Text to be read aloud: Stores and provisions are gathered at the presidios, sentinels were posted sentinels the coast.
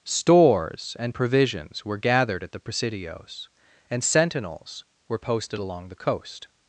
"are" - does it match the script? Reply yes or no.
no